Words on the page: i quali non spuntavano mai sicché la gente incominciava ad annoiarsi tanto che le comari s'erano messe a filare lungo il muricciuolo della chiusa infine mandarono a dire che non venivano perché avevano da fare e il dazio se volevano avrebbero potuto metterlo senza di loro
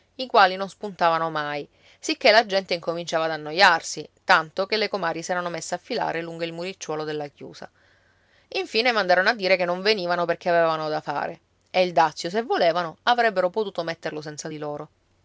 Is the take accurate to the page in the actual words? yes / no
yes